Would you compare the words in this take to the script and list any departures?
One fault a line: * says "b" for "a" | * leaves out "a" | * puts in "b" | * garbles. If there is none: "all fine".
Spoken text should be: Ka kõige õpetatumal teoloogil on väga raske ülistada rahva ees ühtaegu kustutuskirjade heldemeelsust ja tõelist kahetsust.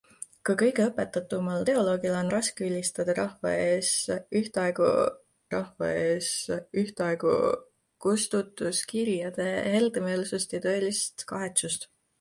* leaves out "väga"
* puts in "rahva ees ühtaegu"